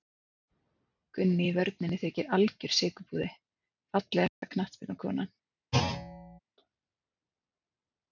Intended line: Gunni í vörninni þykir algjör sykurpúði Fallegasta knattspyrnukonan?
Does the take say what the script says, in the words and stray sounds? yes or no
no